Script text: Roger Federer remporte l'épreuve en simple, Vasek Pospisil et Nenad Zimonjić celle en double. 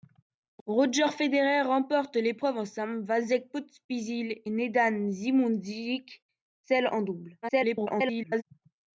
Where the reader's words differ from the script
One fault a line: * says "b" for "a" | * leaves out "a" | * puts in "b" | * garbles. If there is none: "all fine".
* leaves out "et"
* garbles